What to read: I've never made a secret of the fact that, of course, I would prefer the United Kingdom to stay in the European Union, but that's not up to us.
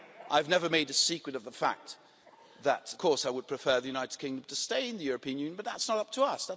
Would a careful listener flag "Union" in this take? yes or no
no